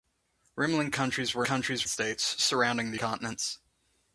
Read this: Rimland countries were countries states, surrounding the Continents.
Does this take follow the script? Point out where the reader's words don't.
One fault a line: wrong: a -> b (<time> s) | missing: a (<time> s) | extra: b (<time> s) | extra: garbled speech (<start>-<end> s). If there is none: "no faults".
no faults